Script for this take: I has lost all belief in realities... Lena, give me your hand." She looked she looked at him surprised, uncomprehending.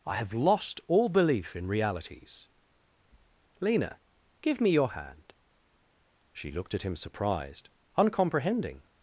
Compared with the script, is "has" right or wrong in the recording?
wrong